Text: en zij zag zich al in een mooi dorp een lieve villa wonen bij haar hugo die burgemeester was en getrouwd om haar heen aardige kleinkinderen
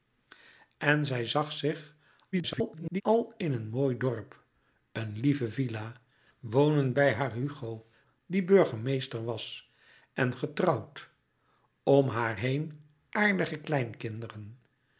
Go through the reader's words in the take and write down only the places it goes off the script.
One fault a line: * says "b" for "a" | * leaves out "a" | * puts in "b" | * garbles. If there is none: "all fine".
* garbles